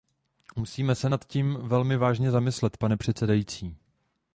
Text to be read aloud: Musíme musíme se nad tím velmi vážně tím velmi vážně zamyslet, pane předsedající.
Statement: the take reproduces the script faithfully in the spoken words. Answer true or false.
false